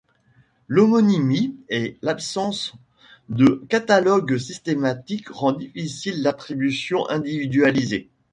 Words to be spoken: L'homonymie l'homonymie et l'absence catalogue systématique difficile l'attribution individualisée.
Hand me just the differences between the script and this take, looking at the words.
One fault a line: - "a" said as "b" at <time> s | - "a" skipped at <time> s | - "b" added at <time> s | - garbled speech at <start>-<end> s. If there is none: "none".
- "l'homonymie" skipped at 1.6 s
- "de" added at 3.3 s
- "rend" added at 5.3 s